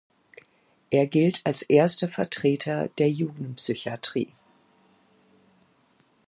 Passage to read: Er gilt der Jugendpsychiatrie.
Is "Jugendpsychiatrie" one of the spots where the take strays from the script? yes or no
no